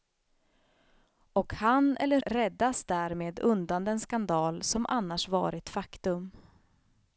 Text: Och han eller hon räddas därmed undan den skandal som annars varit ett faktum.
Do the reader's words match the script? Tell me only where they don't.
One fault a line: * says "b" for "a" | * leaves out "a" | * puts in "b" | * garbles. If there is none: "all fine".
* leaves out "hon"
* leaves out "ett"